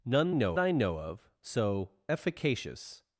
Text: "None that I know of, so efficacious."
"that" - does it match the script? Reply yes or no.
no